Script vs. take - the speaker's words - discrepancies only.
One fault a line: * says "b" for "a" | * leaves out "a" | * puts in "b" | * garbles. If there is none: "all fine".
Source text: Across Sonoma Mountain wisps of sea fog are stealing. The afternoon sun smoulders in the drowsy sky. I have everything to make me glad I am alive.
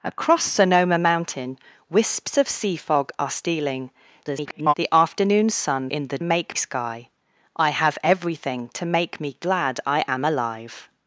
* garbles
* leaves out "smoulders"
* says "make" for "drowsy"